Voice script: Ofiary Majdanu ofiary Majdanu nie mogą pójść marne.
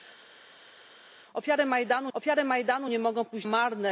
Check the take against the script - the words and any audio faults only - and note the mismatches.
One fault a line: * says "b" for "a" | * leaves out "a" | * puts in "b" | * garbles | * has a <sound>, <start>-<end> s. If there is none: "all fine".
all fine